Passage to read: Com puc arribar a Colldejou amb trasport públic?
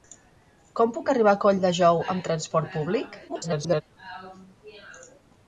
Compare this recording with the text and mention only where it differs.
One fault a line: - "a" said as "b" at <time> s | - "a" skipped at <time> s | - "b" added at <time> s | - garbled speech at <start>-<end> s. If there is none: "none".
- garbled speech at 3.3-3.8 s